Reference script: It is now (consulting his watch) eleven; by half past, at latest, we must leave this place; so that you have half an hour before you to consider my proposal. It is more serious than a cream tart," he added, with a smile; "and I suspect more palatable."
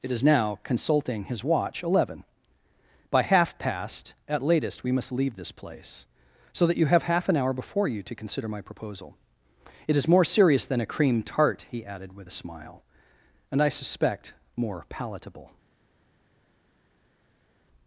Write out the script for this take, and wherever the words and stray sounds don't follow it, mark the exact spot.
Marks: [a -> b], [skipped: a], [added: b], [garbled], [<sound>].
It is now (consulting his watch) eleven; by half past, at latest, we must leave this place; so that you have half an hour before you to consider my proposal. It is more serious than a cream tart," he added, with a smile; "and I suspect more palatable."